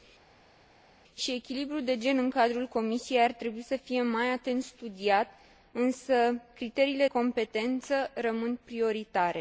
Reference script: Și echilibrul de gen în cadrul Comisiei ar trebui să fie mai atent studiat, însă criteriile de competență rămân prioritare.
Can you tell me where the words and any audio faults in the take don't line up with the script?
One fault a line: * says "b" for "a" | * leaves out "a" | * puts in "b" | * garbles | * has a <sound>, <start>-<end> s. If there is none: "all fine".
* leaves out "de"